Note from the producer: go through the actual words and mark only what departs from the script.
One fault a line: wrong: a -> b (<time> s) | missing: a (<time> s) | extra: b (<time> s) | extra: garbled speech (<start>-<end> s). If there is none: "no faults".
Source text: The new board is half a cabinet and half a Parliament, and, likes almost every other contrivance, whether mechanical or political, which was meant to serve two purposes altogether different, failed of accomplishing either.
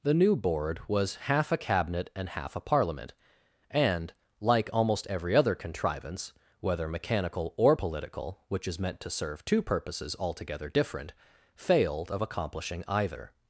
wrong: is -> was (0.9 s)
wrong: likes -> like (4.4 s)
wrong: was -> is (8.7 s)